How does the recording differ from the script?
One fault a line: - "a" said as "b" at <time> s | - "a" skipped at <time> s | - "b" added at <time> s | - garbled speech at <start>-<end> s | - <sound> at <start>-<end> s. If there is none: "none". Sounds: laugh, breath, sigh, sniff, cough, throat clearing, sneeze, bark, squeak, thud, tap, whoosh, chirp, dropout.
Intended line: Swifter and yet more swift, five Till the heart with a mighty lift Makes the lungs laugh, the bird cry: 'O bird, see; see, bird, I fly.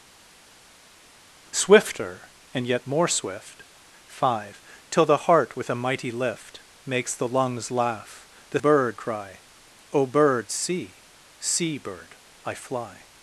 none